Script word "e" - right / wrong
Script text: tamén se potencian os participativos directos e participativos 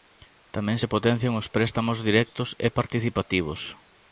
right